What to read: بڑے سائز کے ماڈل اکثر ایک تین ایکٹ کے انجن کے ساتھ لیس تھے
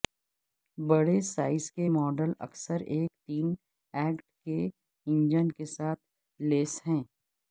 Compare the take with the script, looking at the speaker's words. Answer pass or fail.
fail